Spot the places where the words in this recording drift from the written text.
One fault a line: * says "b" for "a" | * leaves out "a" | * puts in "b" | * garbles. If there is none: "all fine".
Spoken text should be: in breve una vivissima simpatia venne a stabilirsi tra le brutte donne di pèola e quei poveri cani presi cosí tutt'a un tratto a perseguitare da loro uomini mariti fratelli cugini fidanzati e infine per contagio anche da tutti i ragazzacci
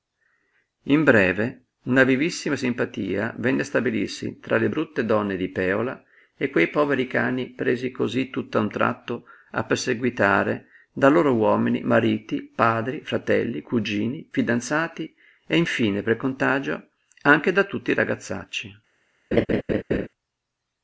* puts in "padri"